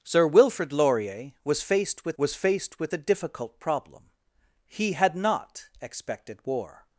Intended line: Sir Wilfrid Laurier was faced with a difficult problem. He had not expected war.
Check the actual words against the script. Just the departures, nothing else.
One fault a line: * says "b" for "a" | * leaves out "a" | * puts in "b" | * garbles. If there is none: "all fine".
* puts in "was faced with"